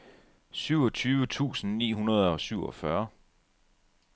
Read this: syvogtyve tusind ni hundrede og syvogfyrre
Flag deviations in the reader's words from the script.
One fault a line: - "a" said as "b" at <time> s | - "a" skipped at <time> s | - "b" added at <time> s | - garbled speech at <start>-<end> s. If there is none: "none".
none